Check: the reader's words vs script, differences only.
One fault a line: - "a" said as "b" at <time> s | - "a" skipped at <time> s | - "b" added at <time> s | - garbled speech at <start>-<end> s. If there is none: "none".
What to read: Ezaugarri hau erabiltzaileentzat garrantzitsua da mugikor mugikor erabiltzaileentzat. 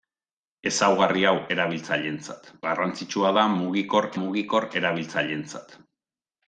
none